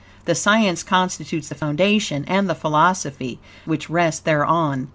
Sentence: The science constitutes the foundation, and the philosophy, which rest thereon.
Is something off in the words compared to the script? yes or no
no